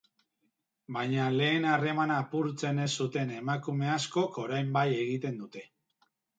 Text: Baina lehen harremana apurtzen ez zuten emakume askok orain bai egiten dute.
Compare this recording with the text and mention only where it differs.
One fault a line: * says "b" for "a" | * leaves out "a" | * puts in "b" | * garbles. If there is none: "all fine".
all fine